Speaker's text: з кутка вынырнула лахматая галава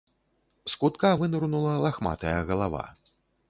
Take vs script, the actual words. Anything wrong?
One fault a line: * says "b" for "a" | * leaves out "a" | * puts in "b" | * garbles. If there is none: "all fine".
all fine